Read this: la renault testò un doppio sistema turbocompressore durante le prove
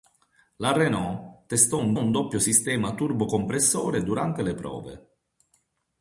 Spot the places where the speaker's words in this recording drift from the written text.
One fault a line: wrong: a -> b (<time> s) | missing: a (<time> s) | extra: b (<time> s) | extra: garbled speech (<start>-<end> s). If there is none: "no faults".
extra: un (1.9 s)